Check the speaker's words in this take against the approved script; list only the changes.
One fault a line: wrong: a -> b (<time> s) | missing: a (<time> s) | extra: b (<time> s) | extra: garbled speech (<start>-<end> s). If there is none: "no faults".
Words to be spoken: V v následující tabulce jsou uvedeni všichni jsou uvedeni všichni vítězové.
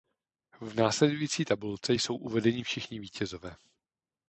missing: v (0.8 s)
missing: jsou uvedeni všichni (3.0 s)